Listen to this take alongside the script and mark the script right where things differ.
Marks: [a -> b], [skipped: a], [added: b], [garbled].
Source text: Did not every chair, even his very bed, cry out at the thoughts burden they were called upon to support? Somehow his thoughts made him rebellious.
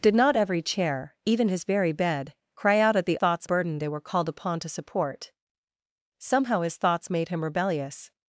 Did not every chair, even his very bed, cry out at the thoughts burden they were called upon to support? Somehow his thoughts made him rebellious.